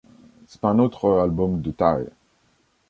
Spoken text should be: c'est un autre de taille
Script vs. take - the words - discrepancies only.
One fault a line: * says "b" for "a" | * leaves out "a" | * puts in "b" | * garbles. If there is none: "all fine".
* puts in "album"